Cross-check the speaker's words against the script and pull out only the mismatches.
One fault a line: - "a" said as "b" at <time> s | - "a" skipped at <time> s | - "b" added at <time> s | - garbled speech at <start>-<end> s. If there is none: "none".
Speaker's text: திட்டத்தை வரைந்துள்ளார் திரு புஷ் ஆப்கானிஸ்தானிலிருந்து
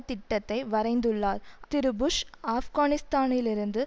none